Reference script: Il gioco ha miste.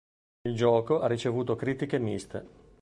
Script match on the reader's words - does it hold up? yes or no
no